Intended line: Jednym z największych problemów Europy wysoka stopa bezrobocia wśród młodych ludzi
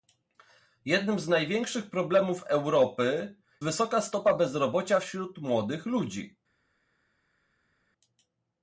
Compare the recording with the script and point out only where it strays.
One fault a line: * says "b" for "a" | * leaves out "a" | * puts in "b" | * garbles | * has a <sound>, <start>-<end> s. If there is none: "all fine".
all fine